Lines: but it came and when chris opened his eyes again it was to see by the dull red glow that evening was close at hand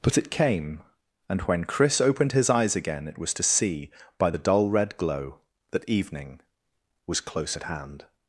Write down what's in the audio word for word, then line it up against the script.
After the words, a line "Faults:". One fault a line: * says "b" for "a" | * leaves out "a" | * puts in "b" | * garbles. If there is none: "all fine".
but it came and when chris opened his eyes again it was to see by the dull red glow that evening was close at hand
Faults:
all fine